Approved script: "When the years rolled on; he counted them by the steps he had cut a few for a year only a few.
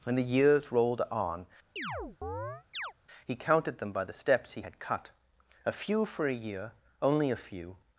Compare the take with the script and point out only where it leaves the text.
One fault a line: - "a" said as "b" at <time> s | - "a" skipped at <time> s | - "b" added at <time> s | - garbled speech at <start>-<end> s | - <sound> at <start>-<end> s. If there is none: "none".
- chirp at 1.8-2.9 s